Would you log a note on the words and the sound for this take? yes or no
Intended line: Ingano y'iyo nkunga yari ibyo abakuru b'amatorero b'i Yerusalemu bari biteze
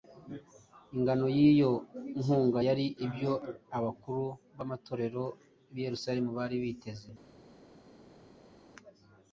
no